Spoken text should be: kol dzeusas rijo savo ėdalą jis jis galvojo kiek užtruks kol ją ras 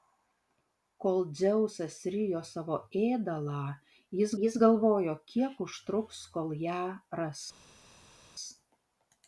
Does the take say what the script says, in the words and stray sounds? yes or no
yes